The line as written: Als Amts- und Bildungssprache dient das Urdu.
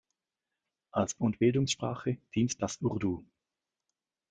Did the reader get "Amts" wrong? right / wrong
wrong